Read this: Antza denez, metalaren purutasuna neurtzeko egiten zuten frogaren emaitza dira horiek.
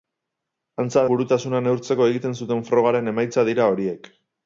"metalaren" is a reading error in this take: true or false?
true